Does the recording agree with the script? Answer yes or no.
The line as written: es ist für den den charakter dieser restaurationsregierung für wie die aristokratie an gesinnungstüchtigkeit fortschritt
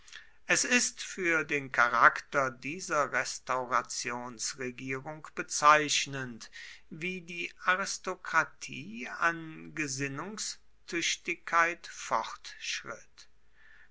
no